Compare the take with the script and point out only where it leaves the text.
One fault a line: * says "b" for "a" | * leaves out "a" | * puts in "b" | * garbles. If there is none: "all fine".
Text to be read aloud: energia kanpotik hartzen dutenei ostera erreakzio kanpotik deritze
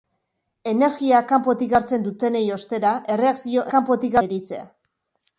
all fine